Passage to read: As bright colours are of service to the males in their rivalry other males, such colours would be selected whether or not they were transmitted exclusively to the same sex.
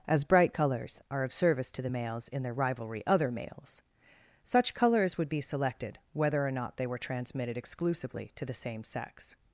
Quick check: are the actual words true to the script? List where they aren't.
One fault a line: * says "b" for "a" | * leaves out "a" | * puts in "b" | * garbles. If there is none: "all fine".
all fine